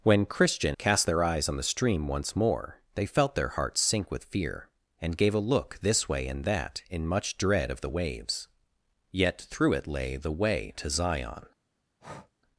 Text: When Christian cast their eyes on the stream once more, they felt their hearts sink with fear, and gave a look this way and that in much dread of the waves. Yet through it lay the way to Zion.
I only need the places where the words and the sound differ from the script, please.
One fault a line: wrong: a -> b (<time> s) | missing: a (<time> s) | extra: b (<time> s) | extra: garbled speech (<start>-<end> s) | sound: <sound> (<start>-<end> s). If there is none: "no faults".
sound: breath (12.0-12.3 s)